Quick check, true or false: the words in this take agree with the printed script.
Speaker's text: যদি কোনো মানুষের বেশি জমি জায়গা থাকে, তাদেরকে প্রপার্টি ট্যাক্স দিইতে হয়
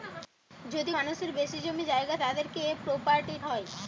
false